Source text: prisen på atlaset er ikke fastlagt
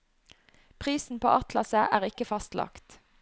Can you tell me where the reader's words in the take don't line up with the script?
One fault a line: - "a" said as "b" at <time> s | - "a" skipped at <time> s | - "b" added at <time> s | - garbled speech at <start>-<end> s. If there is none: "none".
none